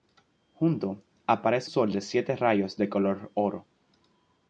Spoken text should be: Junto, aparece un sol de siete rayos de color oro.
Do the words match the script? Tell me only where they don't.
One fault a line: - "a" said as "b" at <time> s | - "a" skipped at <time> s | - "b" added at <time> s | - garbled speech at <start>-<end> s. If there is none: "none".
- "un" skipped at 1.7 s